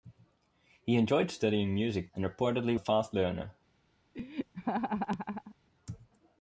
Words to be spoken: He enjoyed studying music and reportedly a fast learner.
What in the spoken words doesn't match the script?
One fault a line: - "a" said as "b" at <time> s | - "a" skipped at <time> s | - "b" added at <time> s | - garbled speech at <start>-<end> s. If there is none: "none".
none